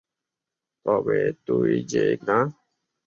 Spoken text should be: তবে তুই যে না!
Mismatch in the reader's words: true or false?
false